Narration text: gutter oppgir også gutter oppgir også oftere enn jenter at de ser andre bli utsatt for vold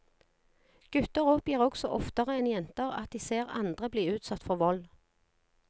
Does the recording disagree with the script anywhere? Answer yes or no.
yes